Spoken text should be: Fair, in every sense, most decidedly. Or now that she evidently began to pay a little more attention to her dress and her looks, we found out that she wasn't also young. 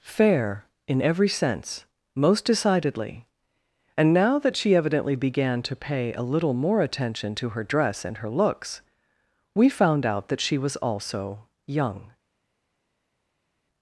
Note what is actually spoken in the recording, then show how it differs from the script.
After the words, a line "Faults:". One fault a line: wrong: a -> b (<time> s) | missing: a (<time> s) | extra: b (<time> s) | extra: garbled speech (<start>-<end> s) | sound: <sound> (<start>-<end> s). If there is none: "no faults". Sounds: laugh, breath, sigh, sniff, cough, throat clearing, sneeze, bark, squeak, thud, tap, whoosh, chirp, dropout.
Fair, in every sense, most decidedly. And now that she evidently began to pay a little more attention to her dress and her looks, we found out that she was also young.
Faults:
wrong: Or -> And (4.0 s)
wrong: wasn't -> was (10.6 s)